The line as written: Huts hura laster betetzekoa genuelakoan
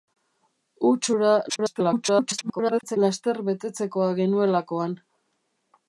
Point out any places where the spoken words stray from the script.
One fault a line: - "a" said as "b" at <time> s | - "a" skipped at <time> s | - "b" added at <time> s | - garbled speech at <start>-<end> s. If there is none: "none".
- garbled speech at 1.5-3.0 s